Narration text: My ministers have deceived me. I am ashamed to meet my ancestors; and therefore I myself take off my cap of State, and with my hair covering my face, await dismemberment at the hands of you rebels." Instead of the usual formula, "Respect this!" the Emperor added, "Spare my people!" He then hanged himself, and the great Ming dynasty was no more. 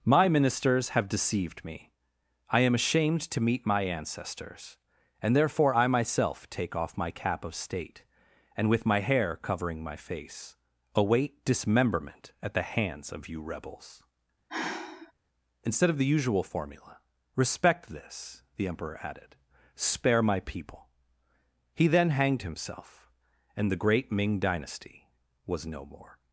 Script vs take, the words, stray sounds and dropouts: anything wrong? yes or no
yes